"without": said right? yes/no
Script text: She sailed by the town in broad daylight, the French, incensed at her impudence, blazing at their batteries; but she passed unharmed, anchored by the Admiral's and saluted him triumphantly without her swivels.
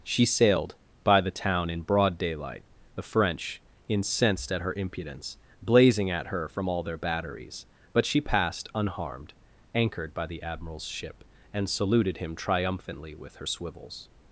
no